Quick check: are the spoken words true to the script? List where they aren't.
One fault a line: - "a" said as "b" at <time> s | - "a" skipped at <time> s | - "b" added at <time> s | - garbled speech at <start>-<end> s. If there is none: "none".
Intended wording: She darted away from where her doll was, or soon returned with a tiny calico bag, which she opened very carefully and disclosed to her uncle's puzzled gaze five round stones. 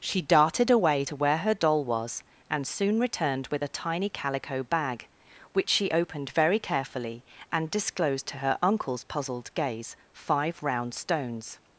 - "from" said as "to" at 1.0 s
- "or" said as "and" at 2.5 s